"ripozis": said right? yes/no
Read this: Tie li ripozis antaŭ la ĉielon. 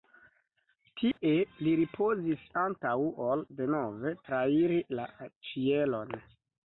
yes